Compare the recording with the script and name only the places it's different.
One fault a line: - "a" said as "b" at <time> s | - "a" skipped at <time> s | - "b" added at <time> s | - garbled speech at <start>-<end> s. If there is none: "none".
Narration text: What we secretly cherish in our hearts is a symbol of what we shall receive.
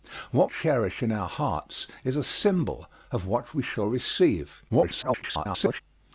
- "we secretly" skipped at 0.5 s
- garbled speech at 4.7-5.8 s